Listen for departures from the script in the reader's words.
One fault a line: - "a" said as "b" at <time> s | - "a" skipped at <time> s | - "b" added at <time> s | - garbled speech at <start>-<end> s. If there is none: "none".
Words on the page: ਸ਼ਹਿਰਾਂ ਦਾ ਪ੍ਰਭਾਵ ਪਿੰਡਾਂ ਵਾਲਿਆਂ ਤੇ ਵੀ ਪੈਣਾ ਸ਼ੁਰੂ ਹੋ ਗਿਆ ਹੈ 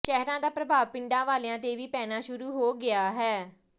none